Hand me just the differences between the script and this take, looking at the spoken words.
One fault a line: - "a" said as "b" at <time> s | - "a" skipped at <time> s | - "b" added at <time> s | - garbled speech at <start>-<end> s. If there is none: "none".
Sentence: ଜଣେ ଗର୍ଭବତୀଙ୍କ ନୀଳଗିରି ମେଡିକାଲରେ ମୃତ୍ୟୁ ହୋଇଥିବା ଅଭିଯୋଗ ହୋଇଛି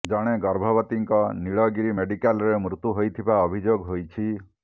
none